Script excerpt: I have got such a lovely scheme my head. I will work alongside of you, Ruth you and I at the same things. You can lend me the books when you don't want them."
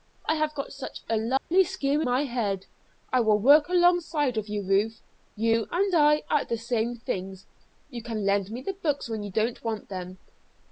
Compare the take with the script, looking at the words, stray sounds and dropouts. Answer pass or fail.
fail